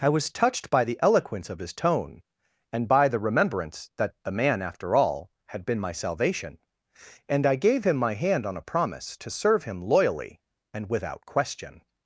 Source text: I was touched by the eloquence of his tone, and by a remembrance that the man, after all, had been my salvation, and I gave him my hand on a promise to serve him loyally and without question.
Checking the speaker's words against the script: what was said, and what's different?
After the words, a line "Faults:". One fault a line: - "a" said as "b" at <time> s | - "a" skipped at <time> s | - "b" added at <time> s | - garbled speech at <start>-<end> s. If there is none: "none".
I was touched by the eloquence of his tone, and by the remembrance that the man, after all, had been my salvation, and I gave him my hand on a promise to serve him loyally and without question.
Faults:
- "a" said as "the" at 3.1 s